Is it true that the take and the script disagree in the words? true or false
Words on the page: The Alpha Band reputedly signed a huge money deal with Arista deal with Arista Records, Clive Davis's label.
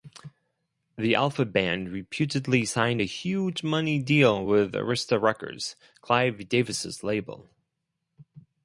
true